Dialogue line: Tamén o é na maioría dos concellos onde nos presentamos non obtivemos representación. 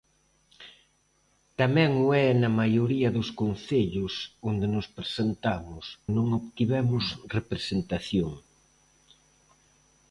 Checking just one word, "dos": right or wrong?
right